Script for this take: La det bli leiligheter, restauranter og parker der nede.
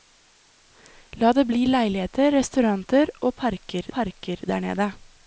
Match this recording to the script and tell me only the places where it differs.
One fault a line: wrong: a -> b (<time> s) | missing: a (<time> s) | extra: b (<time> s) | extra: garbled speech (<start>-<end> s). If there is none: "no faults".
extra: parker (4.0 s)